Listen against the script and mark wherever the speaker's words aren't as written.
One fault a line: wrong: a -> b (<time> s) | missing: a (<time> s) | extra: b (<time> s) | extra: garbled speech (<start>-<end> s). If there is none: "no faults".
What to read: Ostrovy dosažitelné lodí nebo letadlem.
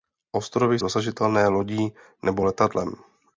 no faults